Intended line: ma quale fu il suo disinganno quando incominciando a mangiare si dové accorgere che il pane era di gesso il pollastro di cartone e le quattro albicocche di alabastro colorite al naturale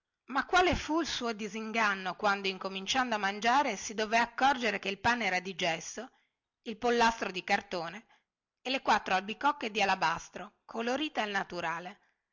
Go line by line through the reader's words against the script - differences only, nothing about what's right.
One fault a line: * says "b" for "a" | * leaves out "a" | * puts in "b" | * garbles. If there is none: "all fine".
all fine